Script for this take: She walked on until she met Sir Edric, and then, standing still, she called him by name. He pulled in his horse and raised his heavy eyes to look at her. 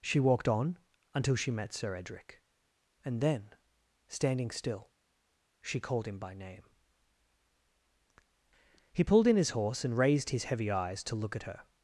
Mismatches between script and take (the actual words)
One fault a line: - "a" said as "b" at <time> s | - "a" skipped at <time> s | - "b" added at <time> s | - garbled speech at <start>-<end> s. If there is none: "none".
none